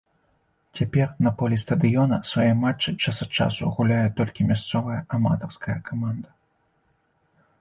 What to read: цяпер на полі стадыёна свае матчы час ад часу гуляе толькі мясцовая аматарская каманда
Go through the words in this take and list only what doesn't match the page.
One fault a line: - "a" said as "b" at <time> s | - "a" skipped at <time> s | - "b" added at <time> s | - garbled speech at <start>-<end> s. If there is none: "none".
none